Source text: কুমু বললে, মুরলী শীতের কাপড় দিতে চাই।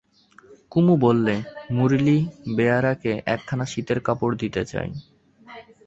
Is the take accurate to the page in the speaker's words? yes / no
no